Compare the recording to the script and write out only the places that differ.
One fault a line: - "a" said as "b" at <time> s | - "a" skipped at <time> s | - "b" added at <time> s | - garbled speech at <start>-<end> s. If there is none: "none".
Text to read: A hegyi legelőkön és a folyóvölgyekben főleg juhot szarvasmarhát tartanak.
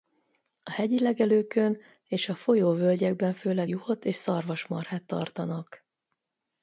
- "és" added at 4.0 s